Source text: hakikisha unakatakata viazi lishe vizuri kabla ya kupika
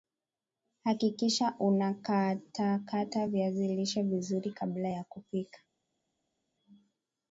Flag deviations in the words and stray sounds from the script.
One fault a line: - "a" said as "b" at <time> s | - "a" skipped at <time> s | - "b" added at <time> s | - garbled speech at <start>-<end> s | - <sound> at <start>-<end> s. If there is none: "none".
none